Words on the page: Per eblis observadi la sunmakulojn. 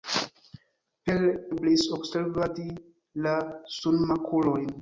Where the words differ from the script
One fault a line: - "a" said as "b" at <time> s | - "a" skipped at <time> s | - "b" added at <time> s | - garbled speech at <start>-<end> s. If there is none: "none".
none